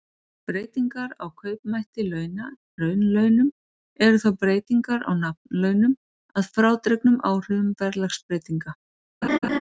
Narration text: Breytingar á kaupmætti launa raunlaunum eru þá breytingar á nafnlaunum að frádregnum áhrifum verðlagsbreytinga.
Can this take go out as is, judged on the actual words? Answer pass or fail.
pass